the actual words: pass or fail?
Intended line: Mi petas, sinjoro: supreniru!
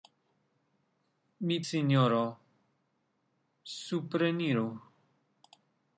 fail